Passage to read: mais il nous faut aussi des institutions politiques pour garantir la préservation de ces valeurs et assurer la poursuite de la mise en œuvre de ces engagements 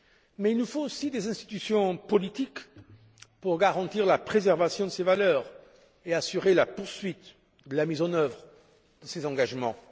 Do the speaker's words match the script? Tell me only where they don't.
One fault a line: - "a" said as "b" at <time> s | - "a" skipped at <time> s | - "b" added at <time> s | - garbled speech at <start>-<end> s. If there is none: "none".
none